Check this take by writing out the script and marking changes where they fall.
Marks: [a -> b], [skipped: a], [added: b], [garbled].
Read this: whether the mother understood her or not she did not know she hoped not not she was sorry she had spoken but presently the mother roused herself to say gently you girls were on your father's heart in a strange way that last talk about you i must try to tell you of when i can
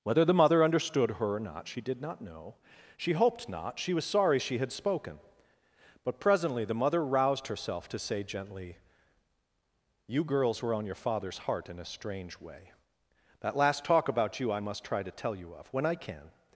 whether the mother understood her or not she did not know she hoped not [skipped: not] she was sorry she had spoken but presently the mother roused herself to say gently you girls were on your father's heart in a strange way that last talk about you i must try to tell you of when i can